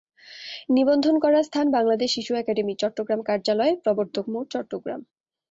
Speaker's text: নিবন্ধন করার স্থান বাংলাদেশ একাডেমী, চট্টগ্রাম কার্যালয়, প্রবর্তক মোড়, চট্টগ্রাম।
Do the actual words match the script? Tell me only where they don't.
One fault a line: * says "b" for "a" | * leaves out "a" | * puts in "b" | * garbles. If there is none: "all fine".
* puts in "শিশু"